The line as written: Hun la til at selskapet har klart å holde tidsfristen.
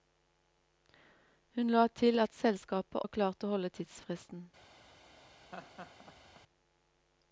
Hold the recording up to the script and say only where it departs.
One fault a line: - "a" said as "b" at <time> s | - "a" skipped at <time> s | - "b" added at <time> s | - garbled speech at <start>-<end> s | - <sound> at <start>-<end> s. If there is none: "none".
- laugh at 5.5-6.4 s